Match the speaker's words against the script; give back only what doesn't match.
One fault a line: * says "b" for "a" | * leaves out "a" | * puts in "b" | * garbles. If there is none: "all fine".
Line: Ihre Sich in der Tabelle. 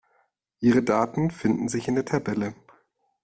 * puts in "Daten finden"